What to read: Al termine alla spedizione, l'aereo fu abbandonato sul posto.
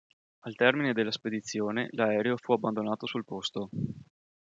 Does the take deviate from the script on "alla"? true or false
true